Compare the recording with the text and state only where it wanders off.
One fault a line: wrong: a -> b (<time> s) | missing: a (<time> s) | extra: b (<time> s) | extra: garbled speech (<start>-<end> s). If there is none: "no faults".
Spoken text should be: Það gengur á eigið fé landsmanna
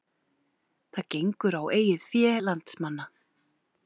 no faults